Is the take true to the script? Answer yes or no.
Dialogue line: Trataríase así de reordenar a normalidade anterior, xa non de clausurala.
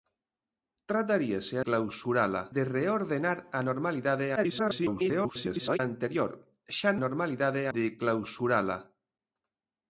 no